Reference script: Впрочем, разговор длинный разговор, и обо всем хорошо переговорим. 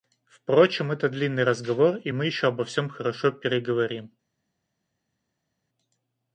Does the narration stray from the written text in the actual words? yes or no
yes